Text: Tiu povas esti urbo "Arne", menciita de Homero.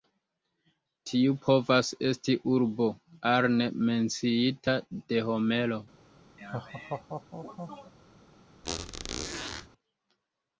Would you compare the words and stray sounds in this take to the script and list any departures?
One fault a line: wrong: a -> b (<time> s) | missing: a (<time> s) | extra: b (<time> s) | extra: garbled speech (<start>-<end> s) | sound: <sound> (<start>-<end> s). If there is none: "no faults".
sound: laugh (6.4-7.9 s)
sound: squeak (8.6-9.7 s)